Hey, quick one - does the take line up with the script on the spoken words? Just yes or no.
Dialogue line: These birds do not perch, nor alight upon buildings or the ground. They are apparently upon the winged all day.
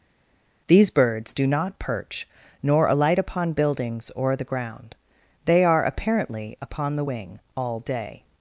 no